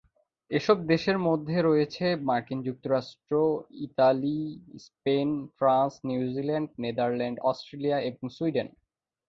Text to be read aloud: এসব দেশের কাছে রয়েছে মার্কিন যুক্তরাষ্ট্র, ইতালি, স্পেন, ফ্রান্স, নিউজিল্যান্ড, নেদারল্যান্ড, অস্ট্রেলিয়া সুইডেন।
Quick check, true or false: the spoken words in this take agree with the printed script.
false